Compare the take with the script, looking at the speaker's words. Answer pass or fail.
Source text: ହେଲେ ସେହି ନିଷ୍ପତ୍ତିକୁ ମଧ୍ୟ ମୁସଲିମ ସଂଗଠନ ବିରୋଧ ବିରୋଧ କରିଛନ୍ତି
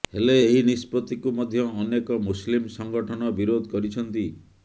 fail